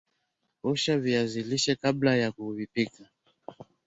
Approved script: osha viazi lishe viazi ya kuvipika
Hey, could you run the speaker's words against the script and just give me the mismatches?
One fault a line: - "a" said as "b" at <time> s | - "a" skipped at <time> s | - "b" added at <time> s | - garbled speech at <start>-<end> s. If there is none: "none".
- "viazi" said as "kabla" at 1.7 s